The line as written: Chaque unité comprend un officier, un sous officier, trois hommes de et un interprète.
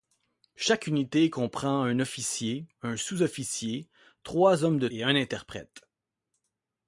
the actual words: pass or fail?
pass